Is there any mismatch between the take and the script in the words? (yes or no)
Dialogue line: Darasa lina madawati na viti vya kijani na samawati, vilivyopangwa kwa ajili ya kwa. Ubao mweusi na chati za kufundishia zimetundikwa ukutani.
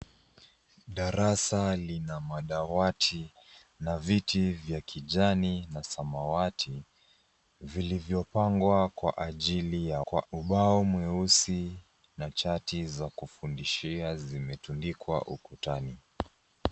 no